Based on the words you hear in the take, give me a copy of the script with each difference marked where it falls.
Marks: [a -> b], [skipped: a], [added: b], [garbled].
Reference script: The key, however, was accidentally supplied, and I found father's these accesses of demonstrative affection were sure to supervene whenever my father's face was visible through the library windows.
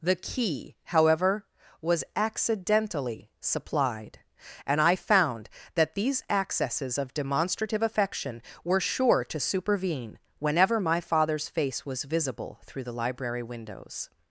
The key, however, was accidentally supplied, and I found [father's -> that] these accesses of demonstrative affection were sure to supervene whenever my father's face was visible through the library windows.